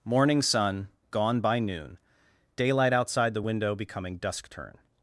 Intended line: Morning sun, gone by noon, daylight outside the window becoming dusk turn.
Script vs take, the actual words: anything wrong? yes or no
no